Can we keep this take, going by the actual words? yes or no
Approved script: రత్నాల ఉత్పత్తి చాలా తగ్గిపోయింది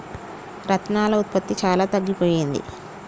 yes